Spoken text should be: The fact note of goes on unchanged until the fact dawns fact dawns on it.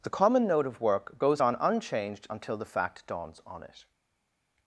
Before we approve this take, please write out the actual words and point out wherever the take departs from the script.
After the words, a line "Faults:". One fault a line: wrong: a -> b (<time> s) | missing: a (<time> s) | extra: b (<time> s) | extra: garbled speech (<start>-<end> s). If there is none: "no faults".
The common note of work goes on unchanged until the fact dawns on it.
Faults:
wrong: fact -> common (0.1 s)
extra: work (0.8 s)
missing: fact dawns (3.4 s)